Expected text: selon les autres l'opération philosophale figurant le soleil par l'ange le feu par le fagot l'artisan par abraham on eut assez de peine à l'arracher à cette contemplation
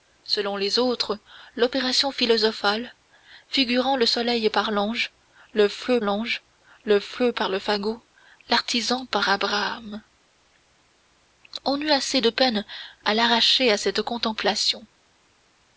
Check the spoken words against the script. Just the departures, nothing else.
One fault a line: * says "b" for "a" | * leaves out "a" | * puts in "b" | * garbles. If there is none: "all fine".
* puts in "l'ange le feu"